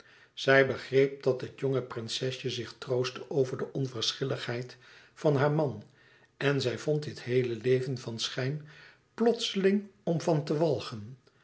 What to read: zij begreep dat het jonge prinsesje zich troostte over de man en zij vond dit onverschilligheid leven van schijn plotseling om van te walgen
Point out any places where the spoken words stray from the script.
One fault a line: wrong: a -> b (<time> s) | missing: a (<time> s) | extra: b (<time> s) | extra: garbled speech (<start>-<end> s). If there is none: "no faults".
extra: onverschilligheid van haar (3.7 s)
wrong: onverschilligheid -> heele (7.2 s)